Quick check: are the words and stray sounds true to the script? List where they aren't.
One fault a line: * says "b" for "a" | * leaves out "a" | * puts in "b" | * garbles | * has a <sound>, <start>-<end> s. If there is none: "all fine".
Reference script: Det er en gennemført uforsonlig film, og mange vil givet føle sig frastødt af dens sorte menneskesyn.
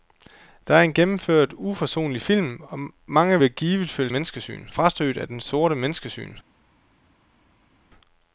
* says "menneskesyn" for "sig"